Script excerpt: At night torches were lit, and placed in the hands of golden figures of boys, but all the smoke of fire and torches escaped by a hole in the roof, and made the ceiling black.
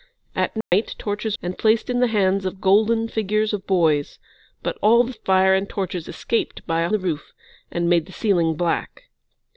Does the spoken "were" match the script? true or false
false